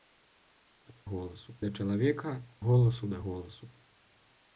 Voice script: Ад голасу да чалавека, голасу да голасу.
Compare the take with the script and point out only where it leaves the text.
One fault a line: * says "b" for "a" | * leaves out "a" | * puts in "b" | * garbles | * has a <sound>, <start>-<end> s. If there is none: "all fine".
all fine